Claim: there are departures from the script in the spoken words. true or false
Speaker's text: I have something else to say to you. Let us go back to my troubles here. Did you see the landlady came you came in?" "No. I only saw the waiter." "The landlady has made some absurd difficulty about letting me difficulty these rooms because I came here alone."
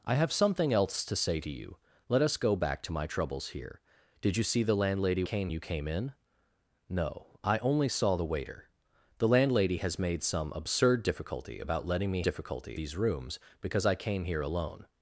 false